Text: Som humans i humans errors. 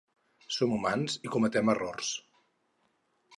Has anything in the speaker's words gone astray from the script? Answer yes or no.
yes